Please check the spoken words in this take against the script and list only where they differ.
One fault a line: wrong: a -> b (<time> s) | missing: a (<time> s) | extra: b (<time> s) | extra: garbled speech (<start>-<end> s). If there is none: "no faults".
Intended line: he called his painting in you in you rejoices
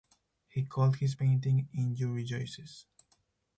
missing: in you (2.1 s)